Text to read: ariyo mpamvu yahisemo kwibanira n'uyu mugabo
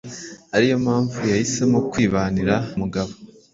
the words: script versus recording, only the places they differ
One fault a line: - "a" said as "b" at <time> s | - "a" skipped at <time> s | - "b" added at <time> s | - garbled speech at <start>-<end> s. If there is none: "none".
- "n'uyu" skipped at 2.5 s